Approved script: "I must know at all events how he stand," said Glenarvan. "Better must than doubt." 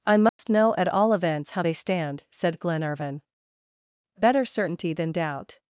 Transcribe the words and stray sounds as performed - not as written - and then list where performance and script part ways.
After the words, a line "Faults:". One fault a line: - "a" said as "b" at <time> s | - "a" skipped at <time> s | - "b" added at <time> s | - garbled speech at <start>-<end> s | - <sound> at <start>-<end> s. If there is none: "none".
"I must know at all events how they stand," said Glenarvan. "Better certainty than doubt."
Faults:
- dropout at 0.3-0.4 s
- "he" said as "they" at 1.6 s
- "must" said as "certainty" at 4.4 s